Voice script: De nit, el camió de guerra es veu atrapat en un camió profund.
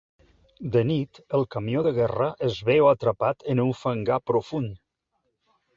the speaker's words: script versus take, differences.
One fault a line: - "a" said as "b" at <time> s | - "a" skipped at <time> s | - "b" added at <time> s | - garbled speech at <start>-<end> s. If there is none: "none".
- "camió" said as "fangar" at 3.8 s